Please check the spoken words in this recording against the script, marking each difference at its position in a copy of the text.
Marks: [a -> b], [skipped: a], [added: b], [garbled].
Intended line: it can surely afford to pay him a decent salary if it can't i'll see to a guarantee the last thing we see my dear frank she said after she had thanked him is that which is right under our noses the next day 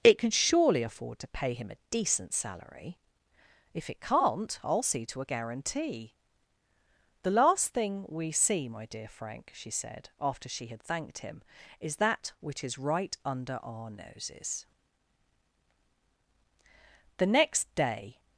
it can surely afford to pay him a decent salary if it can't i'll see to a guarantee the last thing we see my dear frank she said after she had thanked him is that which is right under our noses the next day